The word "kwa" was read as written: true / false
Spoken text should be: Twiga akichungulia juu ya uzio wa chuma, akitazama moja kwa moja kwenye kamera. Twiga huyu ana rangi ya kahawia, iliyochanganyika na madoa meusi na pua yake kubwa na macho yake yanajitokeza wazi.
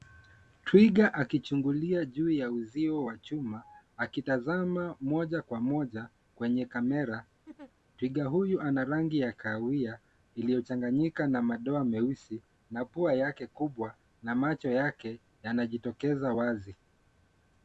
true